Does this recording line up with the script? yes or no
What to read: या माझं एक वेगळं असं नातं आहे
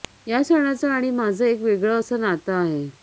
no